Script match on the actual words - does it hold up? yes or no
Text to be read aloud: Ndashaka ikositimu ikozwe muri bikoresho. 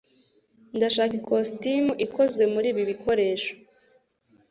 no